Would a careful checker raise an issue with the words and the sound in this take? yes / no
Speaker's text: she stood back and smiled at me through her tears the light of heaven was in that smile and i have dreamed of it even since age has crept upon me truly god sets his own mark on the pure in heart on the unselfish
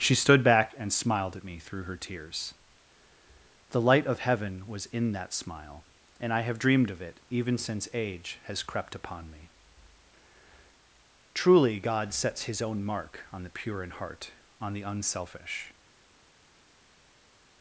no